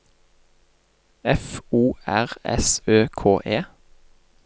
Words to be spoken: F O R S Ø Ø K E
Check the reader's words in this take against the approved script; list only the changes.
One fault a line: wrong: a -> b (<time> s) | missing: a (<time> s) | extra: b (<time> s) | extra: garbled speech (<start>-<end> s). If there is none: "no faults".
missing: Ø (3.1 s)